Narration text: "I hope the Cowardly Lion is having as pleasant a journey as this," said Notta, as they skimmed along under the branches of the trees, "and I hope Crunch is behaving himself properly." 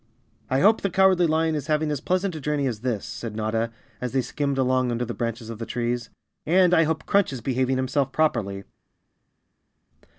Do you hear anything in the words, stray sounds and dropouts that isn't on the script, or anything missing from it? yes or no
no